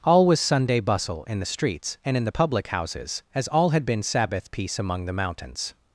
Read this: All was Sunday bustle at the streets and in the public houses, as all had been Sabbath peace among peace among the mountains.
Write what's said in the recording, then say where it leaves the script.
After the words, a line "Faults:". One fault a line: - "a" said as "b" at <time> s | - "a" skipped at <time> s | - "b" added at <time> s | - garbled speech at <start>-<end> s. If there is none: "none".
All was Sunday bustle in the streets and in the public houses, as all had been Sabbath peace among the mountains.
Faults:
- "at" said as "in" at 1.2 s
- "peace among" skipped at 5.1 s